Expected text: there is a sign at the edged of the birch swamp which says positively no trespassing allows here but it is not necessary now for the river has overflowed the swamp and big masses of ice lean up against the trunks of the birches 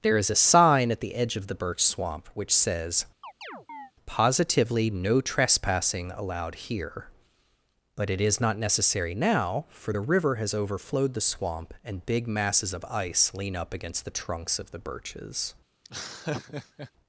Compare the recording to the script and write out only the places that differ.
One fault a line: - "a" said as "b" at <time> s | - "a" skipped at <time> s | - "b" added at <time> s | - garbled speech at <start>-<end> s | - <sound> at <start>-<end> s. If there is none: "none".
- "edged" said as "edge" at 1.1 s
- chirp at 3.2-3.9 s
- "allows" said as "allowed" at 6.1 s
- laugh at 15.8-16.9 s